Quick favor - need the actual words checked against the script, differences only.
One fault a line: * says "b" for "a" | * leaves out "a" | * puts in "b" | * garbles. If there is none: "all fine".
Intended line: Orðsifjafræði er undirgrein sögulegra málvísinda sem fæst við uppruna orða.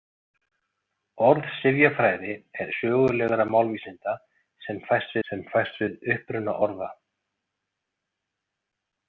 * leaves out "undirgrein"
* puts in "sem fæst"